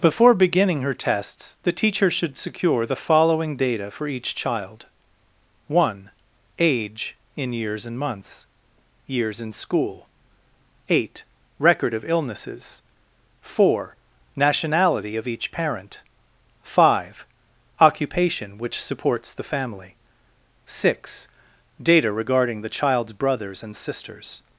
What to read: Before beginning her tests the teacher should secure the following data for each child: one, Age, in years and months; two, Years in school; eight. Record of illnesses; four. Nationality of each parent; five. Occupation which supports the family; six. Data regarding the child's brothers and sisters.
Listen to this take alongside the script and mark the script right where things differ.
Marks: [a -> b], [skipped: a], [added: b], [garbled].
Before beginning her tests the teacher should secure the following data for each child: one, Age, in years and months; [skipped: two,] Years in school; eight. Record of illnesses; four. Nationality of each parent; five. Occupation which supports the family; six. Data regarding the child's brothers and sisters.